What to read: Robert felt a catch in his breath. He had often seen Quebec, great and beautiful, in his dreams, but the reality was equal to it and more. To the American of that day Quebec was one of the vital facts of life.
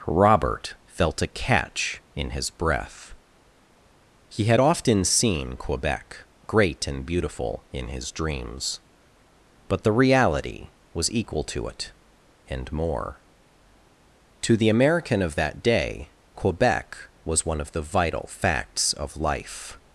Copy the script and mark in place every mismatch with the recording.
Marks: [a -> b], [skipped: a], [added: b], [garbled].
Robert felt a catch in his breath. He had often seen Quebec, great and beautiful, in his dreams, but the reality was equal to it and more. To the American of that day Quebec was one of the vital facts of life.